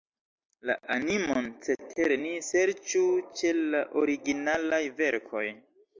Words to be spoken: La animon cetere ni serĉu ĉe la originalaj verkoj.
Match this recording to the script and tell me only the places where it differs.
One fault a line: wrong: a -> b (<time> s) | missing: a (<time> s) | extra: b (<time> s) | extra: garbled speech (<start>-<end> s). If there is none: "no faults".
no faults